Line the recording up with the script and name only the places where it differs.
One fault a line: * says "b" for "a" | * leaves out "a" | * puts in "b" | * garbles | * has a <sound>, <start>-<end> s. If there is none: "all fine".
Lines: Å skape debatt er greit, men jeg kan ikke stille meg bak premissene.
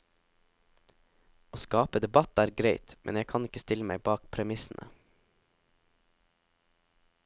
all fine